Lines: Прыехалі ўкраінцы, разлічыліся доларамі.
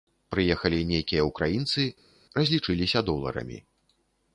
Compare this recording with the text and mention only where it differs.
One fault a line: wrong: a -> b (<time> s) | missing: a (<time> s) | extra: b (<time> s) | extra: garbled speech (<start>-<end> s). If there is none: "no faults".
extra: нейкія (0.9 s)